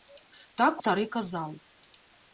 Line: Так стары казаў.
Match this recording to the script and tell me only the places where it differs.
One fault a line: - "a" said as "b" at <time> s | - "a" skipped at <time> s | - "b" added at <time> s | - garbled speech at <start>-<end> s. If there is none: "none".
none